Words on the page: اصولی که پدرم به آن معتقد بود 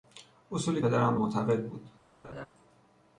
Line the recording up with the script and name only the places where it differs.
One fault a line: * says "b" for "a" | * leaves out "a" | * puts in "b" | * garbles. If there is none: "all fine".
* leaves out "که"
* leaves out "آن"